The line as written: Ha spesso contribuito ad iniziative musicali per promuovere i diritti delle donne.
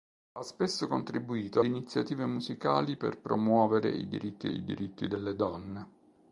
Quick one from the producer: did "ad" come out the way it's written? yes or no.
no